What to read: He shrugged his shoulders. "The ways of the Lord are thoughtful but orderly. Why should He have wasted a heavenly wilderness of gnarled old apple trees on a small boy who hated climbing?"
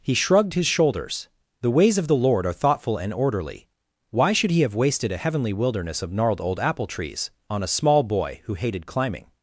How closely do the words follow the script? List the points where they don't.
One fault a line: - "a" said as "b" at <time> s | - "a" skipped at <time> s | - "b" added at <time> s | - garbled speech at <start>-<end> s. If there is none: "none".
- "but" said as "and" at 3.0 s